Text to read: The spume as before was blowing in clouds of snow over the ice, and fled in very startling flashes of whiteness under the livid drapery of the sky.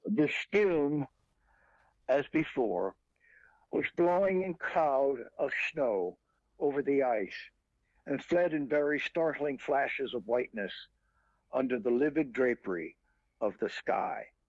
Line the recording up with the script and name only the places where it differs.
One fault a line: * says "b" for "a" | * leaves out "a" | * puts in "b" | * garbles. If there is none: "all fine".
* says "cloud" for "clouds"